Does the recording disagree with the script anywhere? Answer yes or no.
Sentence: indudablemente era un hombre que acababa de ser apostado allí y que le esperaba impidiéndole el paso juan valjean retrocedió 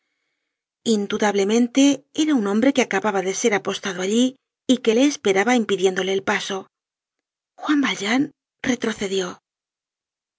no